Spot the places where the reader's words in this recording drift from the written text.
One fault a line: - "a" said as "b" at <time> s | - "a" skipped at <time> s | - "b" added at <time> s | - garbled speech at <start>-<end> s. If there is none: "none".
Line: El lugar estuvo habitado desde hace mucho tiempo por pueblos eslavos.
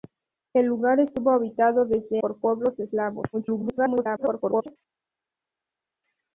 - "hace mucho tiempo" skipped at 2.2 s
- garbled speech at 3.3-4.8 s